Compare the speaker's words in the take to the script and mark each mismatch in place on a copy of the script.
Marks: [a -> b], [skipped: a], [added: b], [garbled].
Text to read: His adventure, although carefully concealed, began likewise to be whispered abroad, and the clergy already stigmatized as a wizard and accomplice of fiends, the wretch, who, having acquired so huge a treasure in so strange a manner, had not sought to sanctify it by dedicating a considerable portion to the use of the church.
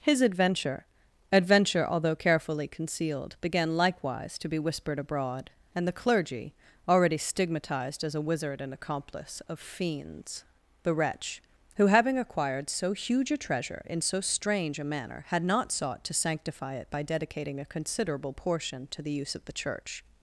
His adventure, [added: adventure] although carefully concealed, began likewise to be whispered abroad, and the clergy already stigmatized as a wizard and accomplice of fiends, the wretch, who, having acquired so huge a treasure in so strange a manner, had not sought to sanctify it by dedicating a considerable portion to the use of the church.